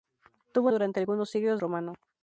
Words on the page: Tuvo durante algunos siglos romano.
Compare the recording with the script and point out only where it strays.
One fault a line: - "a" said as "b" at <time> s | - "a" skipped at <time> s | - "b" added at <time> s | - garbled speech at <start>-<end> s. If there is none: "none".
none